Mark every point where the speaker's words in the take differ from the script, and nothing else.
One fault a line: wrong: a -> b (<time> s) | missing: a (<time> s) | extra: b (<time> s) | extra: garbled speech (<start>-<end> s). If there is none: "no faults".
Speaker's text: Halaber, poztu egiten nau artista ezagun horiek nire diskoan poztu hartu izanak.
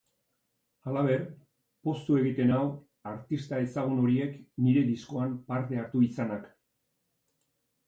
wrong: poztu -> parte (5.5 s)